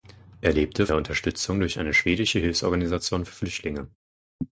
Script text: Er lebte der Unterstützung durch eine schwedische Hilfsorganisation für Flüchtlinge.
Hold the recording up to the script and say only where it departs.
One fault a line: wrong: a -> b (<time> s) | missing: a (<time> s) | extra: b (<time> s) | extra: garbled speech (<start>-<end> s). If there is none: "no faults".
no faults